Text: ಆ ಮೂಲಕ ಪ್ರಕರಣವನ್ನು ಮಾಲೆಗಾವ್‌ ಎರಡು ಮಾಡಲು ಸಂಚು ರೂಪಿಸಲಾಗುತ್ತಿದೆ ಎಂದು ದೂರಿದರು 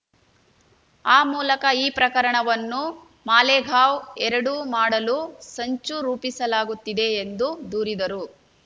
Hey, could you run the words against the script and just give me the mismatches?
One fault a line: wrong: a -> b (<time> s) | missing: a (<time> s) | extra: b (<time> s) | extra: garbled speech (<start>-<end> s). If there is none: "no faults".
extra: ಈ (1.8 s)